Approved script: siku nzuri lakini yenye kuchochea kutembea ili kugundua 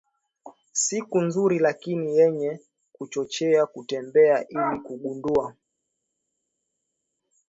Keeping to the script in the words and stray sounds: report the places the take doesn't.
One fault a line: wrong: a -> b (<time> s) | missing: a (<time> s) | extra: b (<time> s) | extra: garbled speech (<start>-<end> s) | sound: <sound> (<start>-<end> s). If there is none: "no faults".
no faults